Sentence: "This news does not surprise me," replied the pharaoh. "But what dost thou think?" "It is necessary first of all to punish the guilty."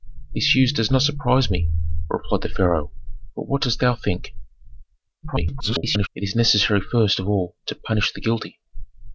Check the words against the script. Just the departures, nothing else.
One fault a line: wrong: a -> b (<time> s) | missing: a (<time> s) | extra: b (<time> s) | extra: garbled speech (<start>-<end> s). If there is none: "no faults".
extra: garbled speech (5.2-6.1 s)